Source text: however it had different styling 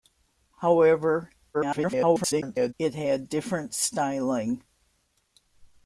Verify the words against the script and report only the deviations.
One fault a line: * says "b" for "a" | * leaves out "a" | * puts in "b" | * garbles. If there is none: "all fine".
* garbles